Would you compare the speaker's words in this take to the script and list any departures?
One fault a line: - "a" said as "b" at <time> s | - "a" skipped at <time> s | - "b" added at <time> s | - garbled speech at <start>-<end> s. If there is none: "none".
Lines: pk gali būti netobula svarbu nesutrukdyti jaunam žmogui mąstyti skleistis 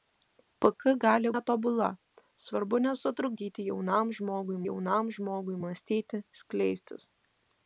- "būti" skipped at 1.3 s
- "jaunam žmogui" added at 4.7 s